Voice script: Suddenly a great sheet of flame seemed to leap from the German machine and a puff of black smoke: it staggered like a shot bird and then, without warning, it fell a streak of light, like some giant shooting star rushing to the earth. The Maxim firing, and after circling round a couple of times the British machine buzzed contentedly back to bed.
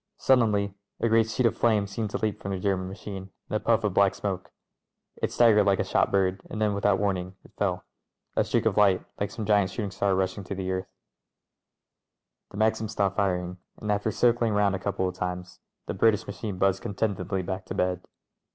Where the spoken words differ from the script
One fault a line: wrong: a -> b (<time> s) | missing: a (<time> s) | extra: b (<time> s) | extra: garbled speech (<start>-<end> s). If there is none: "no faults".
extra: stopped (12.9 s)